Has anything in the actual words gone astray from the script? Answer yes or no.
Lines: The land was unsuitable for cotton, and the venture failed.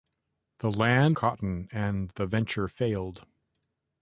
yes